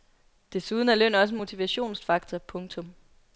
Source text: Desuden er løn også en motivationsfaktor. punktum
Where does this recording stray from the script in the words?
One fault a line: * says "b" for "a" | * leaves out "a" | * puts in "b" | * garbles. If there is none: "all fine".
all fine